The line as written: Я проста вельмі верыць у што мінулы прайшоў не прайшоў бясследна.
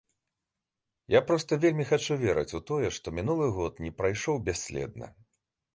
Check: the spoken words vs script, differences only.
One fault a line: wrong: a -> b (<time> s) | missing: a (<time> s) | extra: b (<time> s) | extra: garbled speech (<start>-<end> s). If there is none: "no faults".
extra: хачу (1.9 s)
extra: тое (2.7 s)
wrong: прайшоў -> год (3.6 s)